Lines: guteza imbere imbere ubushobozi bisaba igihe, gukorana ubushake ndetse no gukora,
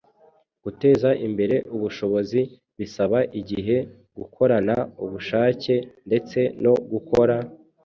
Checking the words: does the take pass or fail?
fail